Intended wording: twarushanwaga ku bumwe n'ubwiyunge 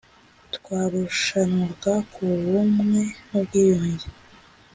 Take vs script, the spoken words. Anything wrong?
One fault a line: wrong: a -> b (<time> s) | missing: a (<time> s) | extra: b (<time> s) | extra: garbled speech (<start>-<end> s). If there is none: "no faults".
no faults